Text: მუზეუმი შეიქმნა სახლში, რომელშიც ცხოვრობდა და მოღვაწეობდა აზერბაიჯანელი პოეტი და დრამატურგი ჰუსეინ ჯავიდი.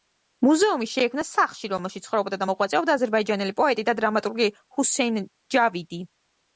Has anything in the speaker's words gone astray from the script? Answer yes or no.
no